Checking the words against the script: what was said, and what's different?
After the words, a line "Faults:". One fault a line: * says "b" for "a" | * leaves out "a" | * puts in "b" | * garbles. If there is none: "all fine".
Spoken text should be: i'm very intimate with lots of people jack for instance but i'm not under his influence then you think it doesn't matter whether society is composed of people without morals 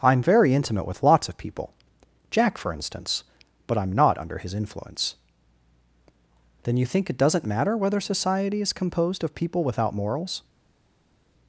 i'm very intimate with lots of people jack for instance but i'm not under his influence then you think it doesn't matter whether society is composed of people without morals
Faults:
all fine